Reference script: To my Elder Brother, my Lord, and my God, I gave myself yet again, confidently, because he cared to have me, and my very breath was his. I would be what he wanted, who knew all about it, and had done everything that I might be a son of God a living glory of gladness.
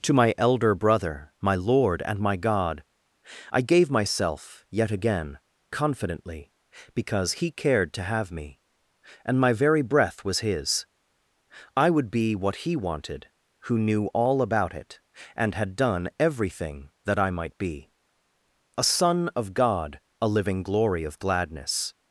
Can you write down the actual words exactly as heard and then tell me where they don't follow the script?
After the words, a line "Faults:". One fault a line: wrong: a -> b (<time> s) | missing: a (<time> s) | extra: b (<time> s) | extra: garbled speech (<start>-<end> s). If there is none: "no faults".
To my Elder Brother, my Lord, and my God, I gave myself yet again, confidently, because he cared to have me, and my very breath was his. I would be what he wanted, who knew all about it, and had done everything that I might be a son of God a living glory of gladness.
Faults:
no faults